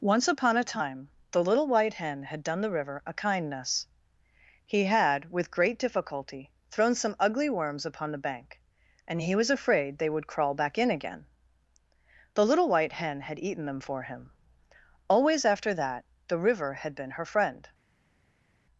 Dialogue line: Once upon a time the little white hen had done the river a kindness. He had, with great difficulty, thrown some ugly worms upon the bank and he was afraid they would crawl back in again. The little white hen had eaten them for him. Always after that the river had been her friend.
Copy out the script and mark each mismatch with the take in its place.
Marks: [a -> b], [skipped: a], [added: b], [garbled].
Once upon a time the little white hen had done the river a kindness. He had, with great difficulty, thrown some ugly worms upon the bank and he was afraid they would crawl back in again. The little white hen had eaten them for him. Always after that the river had been her friend.